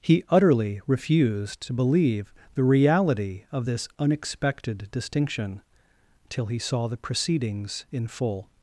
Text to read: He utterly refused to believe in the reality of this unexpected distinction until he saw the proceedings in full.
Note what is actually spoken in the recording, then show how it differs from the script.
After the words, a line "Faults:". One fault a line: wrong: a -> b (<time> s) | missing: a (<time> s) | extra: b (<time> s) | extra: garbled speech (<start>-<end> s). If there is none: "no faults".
He utterly refused to believe the reality of this unexpected distinction till he saw the proceedings in full.
Faults:
missing: in (2.3 s)
wrong: until -> till (6.3 s)